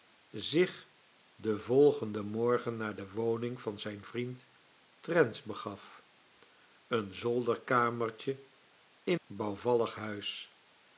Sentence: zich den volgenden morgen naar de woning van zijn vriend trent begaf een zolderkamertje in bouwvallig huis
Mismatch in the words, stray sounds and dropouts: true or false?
false